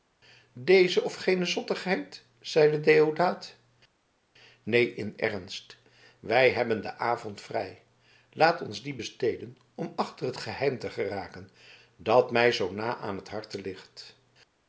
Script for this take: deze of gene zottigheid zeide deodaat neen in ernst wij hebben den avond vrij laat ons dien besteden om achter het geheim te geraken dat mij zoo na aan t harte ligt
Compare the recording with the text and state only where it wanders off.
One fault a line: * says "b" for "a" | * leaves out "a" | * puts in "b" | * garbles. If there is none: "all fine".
all fine